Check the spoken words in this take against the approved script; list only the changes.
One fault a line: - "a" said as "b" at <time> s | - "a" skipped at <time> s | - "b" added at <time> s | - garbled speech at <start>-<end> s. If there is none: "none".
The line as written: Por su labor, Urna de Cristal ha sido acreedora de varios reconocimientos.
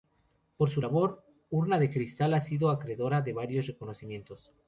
none